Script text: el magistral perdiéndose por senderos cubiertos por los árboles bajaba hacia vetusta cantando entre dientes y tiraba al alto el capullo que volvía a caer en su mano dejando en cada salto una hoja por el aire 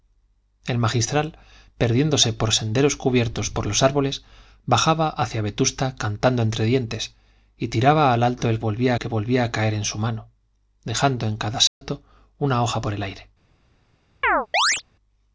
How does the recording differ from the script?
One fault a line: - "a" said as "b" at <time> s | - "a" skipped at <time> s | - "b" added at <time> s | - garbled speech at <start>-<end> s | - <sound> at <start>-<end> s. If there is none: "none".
- "capullo" said as "volvía" at 8.6 s
- dropout at 11.7-11.8 s
- chirp at 14.2-14.8 s